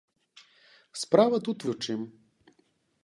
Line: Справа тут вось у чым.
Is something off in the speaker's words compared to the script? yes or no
yes